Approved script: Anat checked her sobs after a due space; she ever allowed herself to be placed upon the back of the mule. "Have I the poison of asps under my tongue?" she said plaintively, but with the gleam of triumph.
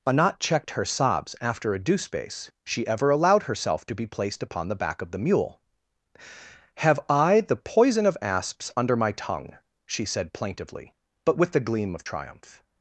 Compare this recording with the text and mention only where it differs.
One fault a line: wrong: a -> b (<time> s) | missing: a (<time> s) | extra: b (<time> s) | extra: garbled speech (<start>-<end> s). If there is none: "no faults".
no faults